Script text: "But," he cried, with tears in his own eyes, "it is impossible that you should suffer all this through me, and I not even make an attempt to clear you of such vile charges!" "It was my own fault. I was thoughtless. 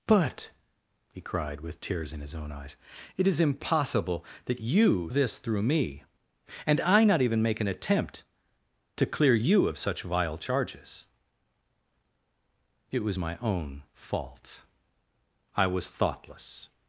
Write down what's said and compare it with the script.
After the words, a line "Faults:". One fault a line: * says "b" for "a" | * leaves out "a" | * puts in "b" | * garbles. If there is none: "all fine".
"But," he cried, with tears in his own eyes, "it is impossible that you this through me, and I not even make an attempt to clear you of such vile charges!" "It was my own fault. I was thoughtless.
Faults:
* leaves out "should suffer all"